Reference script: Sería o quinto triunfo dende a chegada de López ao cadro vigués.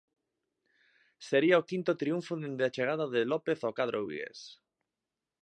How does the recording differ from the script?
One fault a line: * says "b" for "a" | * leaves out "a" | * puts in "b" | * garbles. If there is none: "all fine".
all fine